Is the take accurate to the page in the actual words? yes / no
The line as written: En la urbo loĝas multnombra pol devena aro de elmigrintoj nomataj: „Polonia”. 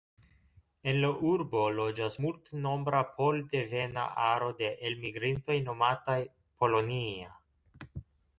yes